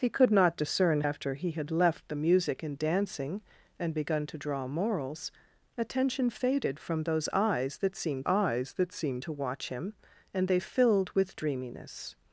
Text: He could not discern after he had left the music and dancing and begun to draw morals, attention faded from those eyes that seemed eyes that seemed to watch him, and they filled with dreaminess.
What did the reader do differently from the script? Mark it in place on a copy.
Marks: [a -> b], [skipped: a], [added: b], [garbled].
He could not discern after he had left the music and dancing and begun to draw morals, attention faded from those eyes that seemed eyes that seemed to watch him, and they filled with dreaminess.